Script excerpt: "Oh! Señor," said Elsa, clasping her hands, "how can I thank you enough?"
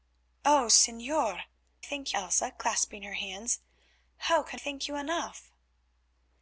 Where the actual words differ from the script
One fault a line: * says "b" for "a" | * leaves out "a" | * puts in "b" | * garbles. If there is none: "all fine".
* says "thank" for "said"
* leaves out "I"